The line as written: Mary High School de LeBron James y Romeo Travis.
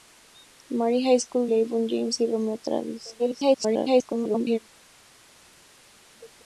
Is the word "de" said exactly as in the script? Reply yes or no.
no